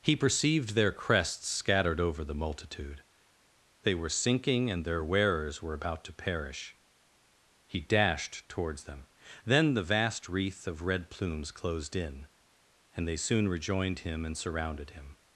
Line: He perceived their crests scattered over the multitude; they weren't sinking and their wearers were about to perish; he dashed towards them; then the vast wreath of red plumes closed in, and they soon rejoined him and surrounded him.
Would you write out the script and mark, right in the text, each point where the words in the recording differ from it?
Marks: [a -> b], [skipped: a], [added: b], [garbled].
He perceived their crests scattered over the multitude; they [weren't -> were] sinking and their wearers were about to perish; he dashed towards them; then the vast wreath of red plumes closed in, and they soon rejoined him and surrounded him.